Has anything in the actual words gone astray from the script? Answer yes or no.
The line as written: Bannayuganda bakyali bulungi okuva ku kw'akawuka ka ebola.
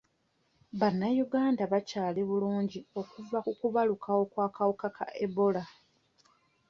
yes